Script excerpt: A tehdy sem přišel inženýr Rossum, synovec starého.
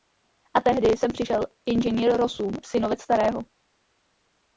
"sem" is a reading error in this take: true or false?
false